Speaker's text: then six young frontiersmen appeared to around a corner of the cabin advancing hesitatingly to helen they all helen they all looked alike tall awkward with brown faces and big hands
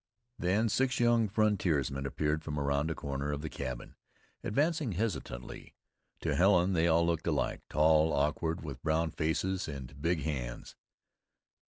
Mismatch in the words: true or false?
true